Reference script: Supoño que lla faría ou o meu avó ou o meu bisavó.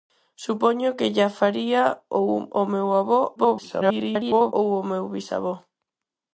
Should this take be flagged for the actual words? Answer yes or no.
yes